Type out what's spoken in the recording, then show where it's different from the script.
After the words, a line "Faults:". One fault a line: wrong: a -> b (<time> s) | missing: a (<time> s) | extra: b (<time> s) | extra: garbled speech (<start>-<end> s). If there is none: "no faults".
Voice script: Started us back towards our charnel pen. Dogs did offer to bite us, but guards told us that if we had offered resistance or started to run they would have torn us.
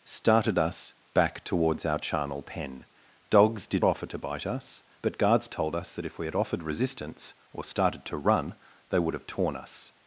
Started us back towards our charnel pen. Dogs did offer to bite us, but guards told us that if we had offered resistance or started to run they would have torn us.
Faults:
no faults